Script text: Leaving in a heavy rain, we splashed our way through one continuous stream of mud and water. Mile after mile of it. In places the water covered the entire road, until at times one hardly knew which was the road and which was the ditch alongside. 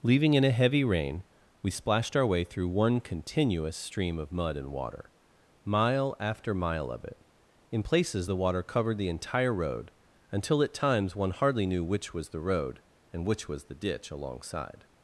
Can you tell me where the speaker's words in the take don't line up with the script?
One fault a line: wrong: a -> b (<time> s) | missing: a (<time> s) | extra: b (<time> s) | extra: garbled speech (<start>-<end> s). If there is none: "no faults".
no faults